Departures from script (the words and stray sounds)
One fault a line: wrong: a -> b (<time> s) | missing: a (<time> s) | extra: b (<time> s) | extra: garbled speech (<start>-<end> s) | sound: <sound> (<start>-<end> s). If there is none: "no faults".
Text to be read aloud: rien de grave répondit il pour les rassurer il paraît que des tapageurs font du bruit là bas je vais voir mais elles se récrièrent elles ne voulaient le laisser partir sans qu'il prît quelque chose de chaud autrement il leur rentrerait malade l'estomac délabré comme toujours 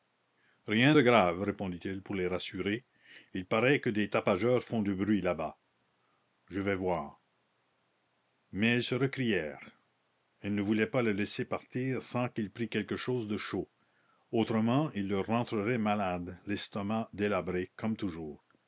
extra: pas (10.8 s)